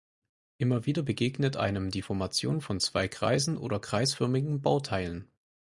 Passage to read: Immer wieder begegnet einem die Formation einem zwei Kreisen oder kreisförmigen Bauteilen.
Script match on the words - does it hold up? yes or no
no